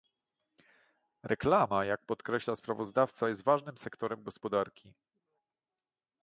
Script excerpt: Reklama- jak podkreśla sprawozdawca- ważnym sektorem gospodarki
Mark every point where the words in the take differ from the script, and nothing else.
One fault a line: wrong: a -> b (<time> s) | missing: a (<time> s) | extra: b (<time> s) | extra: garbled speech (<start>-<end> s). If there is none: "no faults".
extra: jest (3.3 s)